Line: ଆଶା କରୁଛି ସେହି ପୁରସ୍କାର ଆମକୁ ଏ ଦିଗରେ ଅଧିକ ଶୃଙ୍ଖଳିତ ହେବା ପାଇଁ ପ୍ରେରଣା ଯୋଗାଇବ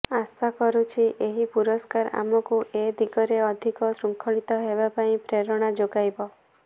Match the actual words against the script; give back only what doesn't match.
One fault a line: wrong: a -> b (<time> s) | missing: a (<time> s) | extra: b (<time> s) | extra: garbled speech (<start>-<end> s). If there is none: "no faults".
wrong: ସେହି -> ଏହି (1.2 s)